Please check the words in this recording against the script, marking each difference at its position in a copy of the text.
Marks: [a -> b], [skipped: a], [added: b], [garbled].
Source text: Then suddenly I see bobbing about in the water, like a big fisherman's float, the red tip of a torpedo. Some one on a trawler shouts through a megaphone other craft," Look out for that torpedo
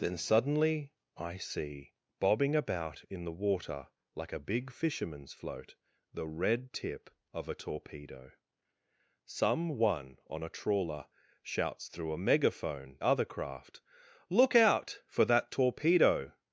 Then suddenly I see bobbing about in the water, like a big fisherman's float, the red tip of a torpedo. Some one on a trawler shouts through a megaphone other craft," Look out for that torpedo